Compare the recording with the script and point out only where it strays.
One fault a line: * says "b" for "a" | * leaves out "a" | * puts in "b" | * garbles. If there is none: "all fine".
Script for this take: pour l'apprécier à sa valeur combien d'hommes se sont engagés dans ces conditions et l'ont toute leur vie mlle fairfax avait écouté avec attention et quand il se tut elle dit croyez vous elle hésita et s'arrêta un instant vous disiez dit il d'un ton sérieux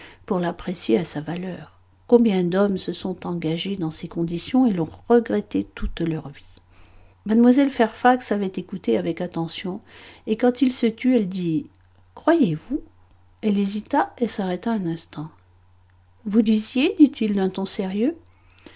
* puts in "regretté"